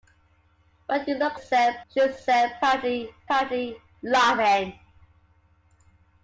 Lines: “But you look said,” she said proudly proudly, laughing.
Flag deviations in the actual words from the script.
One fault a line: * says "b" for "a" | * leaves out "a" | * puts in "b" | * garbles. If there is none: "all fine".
all fine